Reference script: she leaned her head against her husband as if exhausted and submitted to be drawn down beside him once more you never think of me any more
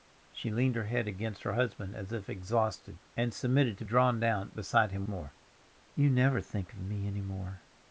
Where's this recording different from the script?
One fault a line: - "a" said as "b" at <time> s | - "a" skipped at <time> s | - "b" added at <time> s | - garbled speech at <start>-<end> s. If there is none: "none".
- "be" skipped at 3.9 s
- "once" skipped at 5.1 s